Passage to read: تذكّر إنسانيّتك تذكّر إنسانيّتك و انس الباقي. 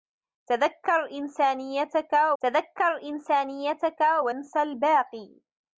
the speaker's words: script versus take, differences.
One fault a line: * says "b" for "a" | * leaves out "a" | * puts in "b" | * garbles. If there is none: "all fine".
all fine